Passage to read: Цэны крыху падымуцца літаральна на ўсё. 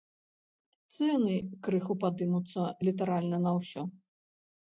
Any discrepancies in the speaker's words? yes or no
no